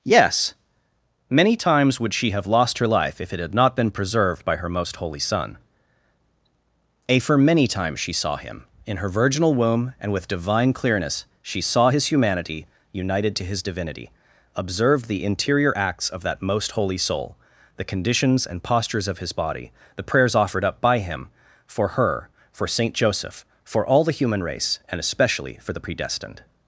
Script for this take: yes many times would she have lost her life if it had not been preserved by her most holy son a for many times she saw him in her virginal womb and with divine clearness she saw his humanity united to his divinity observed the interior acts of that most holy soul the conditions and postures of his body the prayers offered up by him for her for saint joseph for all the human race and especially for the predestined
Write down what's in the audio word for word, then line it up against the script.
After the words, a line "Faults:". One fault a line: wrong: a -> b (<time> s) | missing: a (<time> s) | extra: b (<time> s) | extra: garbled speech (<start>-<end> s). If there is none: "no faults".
yes many times would she have lost her life if it had not been preserved by her most holy son a for many times she saw him in her virginal womb and with divine clearness she saw his humanity united to his divinity observed the interior acts of that most holy soul the conditions and postures of his body the prayers offered up by him for her for saint joseph for all the human race and especially for the predestined
Faults:
no faults